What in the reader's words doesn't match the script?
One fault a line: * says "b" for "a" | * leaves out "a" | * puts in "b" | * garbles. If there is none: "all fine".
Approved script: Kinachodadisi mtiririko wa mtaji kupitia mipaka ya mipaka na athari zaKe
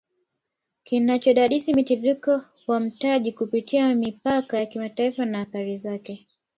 * says "kimataifa" for "mipaka"